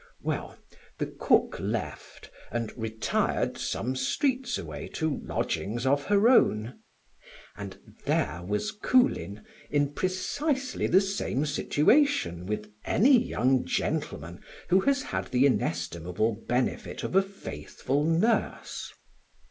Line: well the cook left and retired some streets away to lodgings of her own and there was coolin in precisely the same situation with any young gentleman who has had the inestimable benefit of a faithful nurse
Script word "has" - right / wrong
right